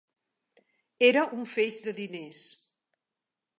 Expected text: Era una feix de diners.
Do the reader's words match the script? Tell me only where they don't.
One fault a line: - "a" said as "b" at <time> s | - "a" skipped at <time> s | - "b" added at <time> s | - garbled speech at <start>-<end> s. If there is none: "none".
- "una" said as "un" at 1.4 s